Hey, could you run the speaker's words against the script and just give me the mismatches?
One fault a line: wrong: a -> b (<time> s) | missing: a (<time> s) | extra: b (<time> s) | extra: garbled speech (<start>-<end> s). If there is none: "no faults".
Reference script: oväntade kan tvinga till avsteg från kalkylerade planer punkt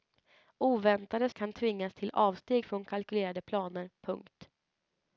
no faults